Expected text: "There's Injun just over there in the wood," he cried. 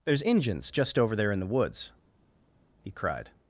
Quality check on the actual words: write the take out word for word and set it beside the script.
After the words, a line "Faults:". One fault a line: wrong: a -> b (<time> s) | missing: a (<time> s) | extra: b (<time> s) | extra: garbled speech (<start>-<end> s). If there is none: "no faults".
"There's Injuns just over there in the woods," he cried.
Faults:
wrong: Injun -> Injuns (0.2 s)
wrong: wood -> woods (1.5 s)